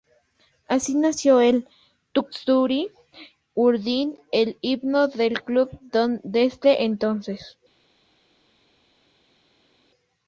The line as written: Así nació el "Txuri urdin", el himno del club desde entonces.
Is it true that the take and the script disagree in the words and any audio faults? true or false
false